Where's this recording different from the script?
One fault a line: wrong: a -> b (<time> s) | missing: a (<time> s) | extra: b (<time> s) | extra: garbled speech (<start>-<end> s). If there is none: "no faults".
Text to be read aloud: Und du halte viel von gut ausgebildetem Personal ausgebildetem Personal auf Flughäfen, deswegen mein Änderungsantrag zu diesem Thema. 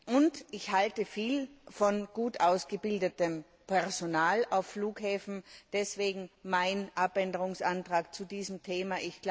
wrong: du -> ich (0.5 s)
missing: ausgebildetem Personal (4.5 s)